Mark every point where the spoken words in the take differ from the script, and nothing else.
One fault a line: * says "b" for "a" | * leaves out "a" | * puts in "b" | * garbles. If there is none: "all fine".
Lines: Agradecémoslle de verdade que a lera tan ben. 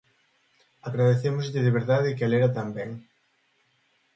all fine